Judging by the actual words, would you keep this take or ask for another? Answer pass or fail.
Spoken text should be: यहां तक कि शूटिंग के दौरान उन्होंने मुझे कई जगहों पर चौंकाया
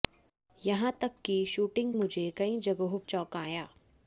fail